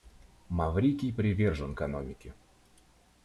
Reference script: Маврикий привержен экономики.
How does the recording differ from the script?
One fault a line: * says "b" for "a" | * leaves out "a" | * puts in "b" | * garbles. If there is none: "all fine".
all fine